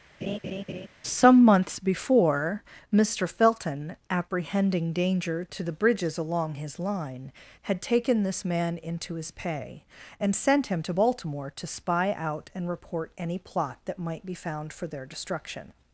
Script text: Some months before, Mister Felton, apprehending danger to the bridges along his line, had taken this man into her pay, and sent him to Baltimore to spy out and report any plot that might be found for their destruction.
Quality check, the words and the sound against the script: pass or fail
fail